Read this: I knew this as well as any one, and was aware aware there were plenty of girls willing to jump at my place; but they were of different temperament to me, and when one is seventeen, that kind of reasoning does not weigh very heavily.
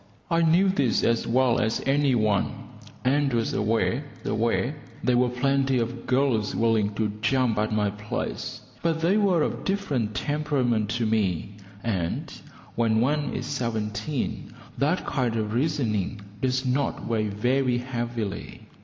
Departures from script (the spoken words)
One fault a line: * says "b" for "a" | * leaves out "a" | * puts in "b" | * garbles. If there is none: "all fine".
all fine